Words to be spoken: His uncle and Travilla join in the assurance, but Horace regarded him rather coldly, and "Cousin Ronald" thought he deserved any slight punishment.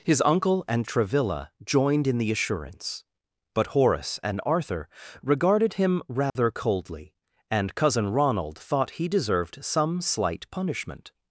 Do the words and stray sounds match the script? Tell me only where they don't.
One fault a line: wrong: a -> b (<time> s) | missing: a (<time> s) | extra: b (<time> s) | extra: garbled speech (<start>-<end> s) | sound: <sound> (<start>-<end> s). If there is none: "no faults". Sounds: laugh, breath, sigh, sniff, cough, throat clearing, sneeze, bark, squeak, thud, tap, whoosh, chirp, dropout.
wrong: join -> joined (1.6 s)
extra: and Arthur (4.2 s)
sound: dropout (6.3-6.4 s)
wrong: any -> some (9.6 s)